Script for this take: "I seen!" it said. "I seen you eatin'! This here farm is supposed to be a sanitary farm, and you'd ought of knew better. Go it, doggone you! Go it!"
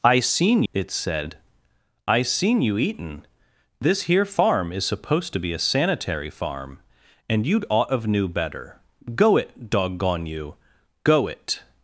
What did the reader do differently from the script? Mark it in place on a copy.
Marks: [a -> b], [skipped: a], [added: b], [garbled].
"I seen!" it said. "I seen you eatin'! This here farm is supposed to be a sanitary farm, and you'd ought of knew better. Go it, doggone you! Go it!"